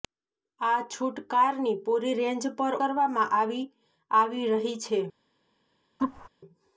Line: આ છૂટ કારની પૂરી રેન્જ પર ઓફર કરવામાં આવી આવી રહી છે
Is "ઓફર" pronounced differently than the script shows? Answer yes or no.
yes